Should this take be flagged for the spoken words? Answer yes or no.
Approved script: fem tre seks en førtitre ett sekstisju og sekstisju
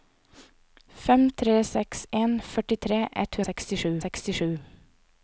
no